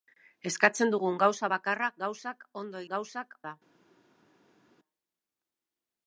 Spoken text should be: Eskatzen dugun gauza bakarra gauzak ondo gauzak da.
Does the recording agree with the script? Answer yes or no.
yes